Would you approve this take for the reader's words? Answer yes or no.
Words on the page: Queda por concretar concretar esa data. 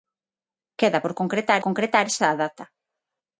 yes